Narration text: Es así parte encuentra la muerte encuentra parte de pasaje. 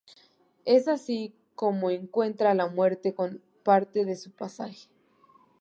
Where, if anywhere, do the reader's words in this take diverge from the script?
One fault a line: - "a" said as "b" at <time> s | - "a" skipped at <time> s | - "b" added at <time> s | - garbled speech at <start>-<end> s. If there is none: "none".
- "parte" said as "como" at 1.5 s
- "encuentra" said as "con" at 3.1 s
- "su" added at 4.1 s